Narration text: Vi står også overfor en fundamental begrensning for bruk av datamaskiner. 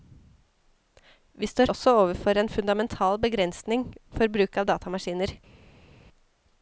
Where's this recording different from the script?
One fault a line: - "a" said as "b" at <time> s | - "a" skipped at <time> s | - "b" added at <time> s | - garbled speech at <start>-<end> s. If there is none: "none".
none